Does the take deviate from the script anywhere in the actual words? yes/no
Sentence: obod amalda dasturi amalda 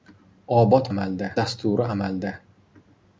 no